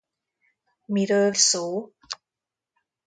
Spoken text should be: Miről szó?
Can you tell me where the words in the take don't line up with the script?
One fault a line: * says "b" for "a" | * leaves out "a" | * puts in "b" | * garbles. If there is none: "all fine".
all fine